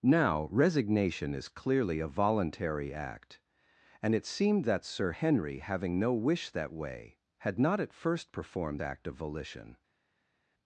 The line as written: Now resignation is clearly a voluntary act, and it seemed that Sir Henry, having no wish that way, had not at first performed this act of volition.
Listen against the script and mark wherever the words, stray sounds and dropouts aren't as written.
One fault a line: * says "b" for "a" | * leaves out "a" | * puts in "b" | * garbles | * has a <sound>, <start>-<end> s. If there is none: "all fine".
* leaves out "this"